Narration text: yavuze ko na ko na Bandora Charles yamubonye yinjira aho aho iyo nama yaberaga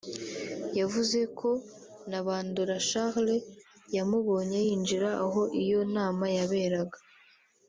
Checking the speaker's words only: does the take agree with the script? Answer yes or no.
no